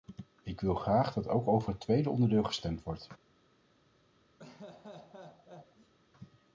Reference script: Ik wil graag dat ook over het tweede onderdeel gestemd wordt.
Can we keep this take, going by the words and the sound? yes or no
no